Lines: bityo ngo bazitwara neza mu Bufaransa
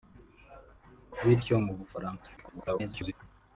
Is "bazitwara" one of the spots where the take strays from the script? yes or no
yes